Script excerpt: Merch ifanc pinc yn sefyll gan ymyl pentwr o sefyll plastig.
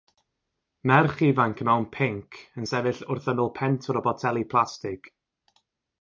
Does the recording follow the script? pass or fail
fail